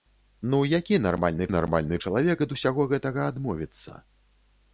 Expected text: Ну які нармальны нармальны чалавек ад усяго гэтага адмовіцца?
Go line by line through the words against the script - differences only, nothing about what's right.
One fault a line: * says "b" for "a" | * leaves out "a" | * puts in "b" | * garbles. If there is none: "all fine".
all fine